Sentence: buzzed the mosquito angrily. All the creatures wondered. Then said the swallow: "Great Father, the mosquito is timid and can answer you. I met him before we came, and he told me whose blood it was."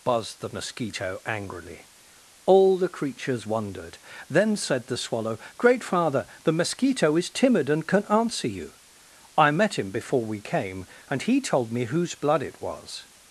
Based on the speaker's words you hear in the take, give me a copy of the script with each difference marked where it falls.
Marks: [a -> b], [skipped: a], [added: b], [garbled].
buzzed the mosquito angrily. All the creatures wondered. Then said the swallow: "Great Father, the mosquito is timid and can answer you. I met him before we came, and he told me whose blood it was."